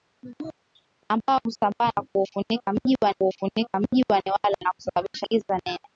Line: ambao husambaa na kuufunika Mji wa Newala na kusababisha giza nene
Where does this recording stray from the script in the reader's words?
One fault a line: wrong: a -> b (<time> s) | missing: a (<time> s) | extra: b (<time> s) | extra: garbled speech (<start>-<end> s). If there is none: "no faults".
extra: kuufunika Mji wa (3.2 s)